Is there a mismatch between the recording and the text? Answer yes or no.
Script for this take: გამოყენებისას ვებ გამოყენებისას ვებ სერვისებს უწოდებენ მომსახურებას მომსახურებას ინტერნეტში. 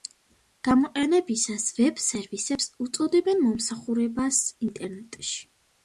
yes